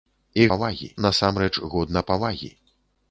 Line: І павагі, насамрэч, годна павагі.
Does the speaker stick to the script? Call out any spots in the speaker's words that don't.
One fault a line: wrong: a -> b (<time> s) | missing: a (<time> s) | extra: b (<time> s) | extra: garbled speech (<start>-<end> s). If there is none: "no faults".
no faults